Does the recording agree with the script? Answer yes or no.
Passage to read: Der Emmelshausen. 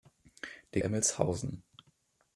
yes